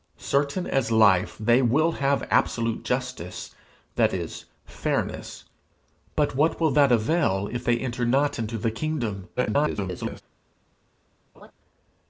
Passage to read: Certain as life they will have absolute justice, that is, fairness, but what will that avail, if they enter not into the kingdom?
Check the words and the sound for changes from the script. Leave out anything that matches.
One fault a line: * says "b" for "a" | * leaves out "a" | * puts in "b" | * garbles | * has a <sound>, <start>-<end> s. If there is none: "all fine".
* garbles
* has a laugh, 11.3-11.5 s